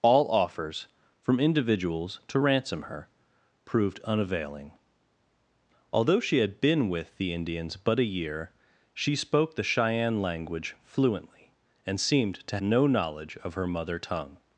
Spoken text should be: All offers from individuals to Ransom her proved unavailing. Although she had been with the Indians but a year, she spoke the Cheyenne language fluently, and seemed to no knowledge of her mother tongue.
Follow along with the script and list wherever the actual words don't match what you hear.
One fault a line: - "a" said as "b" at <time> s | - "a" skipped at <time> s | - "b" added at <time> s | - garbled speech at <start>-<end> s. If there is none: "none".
none